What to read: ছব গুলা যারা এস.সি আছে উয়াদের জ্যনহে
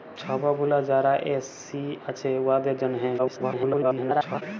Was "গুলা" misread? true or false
false